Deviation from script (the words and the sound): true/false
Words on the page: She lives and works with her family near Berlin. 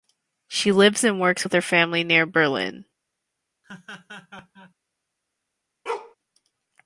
true